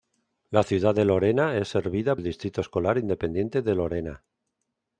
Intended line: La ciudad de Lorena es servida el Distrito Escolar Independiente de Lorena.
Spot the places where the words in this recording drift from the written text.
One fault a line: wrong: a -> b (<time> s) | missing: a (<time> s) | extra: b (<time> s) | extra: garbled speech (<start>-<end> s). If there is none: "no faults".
no faults